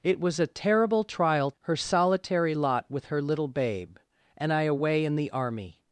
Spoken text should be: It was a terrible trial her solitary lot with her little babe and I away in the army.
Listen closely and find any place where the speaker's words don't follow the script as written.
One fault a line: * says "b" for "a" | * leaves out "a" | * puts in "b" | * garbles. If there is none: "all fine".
all fine